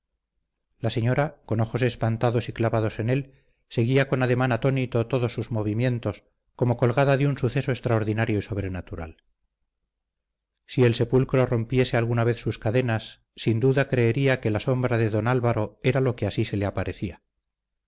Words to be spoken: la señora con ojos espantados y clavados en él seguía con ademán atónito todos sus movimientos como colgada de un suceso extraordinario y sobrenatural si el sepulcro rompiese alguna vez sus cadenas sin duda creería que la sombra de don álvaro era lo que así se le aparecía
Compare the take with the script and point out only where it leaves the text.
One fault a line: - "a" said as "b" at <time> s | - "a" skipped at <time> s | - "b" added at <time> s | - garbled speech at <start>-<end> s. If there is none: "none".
none